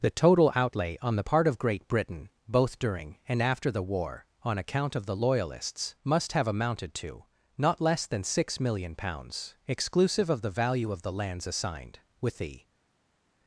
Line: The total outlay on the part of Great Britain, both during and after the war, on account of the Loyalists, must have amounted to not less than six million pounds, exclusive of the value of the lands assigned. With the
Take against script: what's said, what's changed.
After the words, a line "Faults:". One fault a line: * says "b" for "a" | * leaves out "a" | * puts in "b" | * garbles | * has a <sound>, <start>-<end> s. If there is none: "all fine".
The total outlay on the part of Great Britain, both during and after the war, on account of the Loyalists, must have amounted to not less than six million pounds, exclusive of the value of the lands assigned. With the
Faults:
all fine